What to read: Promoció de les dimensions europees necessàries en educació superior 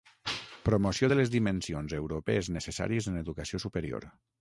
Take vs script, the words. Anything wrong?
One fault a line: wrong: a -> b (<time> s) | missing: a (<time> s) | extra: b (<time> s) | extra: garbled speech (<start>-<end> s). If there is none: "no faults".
no faults